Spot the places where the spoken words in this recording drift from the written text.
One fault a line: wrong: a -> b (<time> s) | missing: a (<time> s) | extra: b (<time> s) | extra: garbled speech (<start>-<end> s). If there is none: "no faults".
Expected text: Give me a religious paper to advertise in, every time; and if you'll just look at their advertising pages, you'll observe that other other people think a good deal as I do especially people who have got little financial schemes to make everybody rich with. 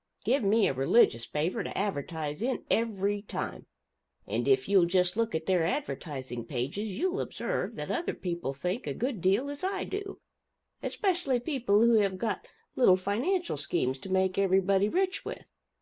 missing: other (8.2 s)